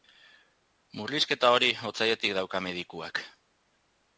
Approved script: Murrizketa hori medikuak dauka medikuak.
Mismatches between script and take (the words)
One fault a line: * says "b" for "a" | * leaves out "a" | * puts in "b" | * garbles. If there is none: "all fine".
* says "otsailetik" for "medikuak"